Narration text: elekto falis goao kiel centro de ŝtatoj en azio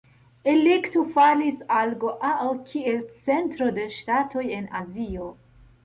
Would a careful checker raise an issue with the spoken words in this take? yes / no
yes